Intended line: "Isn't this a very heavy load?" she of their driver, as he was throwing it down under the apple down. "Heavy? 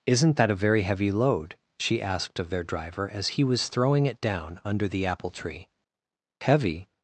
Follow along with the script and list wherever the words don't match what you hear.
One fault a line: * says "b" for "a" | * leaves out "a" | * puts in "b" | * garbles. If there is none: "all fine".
* says "that" for "this"
* puts in "asked"
* says "tree" for "down"